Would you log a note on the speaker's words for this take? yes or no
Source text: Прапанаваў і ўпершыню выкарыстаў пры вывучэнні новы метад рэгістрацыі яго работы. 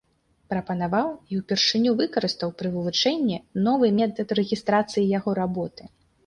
no